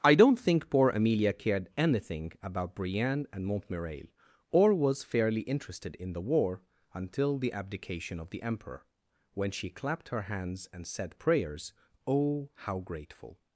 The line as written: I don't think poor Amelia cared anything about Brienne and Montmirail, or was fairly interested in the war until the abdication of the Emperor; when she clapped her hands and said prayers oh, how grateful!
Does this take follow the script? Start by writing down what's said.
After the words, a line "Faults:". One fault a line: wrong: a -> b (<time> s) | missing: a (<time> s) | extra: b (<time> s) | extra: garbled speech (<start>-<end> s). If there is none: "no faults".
I don't think poor Amelia cared anything about Brienne and Montmirail, or was fairly interested in the war until the abdication of the Emperor; when she clapped her hands and said prayers oh, how grateful!
Faults:
no faults